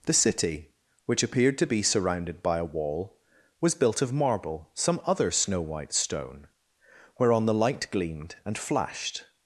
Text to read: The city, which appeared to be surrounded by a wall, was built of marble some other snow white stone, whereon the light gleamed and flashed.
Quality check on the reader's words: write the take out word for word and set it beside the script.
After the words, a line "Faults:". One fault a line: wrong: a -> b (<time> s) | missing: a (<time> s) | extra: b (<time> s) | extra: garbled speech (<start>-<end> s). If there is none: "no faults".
The city, which appeared to be surrounded by a wall, was built of marble some other snow white stone, whereon the light gleamed and flashed.
Faults:
no faults